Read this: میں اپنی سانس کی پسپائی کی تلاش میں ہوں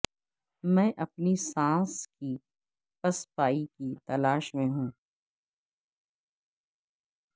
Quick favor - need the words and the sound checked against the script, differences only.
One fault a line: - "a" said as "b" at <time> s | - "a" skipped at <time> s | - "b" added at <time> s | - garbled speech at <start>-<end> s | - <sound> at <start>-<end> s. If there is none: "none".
none